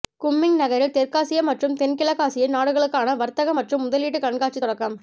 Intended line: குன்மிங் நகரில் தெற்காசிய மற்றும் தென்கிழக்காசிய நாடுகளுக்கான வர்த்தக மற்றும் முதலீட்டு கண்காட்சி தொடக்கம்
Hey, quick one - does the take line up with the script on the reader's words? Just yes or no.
yes